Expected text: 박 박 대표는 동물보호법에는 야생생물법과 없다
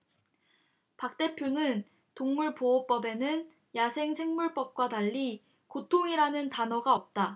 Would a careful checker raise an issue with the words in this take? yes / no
yes